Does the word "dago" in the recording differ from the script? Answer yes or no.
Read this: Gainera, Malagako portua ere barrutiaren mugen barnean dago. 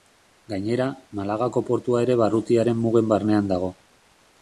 no